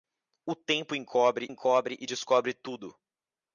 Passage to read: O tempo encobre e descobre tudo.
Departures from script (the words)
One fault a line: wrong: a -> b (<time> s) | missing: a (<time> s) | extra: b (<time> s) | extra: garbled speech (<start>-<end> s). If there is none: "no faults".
extra: encobre (1.5 s)